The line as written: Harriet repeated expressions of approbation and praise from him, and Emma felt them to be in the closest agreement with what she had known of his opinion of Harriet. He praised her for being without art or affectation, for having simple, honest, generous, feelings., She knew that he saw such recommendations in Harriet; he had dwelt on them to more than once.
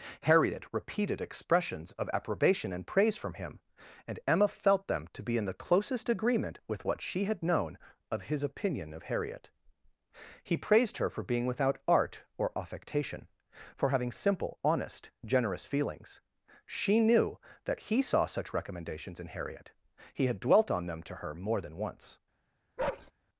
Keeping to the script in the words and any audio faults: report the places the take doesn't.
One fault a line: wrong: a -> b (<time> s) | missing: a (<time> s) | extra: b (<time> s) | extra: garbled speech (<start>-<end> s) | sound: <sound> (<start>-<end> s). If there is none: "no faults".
extra: her (21.2 s)
sound: bark (22.8-23.1 s)